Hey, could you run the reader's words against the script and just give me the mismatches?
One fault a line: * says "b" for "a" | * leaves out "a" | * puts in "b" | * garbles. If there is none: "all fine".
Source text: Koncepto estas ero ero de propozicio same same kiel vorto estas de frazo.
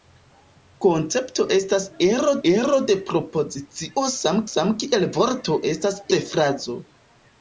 all fine